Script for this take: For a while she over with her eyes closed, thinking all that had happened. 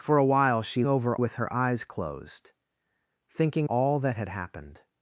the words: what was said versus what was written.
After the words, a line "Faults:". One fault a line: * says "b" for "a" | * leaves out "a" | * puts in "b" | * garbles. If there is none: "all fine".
For a while she over with her eyes closed, thinking all that had happened.
Faults:
all fine